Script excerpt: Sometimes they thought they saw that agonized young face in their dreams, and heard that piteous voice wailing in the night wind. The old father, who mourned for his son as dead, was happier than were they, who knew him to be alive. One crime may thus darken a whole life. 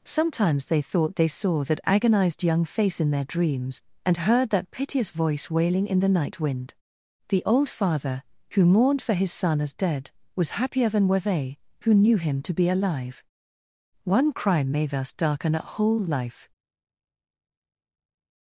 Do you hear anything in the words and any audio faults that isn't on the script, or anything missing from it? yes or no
no